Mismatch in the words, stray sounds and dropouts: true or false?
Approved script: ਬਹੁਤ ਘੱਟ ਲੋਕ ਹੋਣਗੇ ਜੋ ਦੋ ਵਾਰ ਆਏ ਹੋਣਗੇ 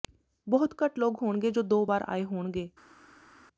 false